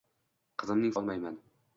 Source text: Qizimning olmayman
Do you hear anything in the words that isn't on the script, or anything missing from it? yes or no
no